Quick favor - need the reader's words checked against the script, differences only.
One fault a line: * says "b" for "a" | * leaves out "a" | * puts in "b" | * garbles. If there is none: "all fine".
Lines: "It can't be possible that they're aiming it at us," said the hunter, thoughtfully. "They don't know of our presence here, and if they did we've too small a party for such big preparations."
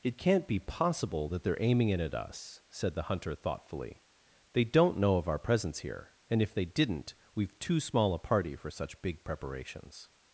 * says "didn't" for "did"